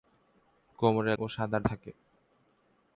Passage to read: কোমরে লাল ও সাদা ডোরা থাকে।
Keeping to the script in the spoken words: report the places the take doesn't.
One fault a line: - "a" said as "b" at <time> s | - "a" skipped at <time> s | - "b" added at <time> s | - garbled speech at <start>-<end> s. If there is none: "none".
- "লাল" skipped at 1.1 s
- "ডোরা" skipped at 1.6 s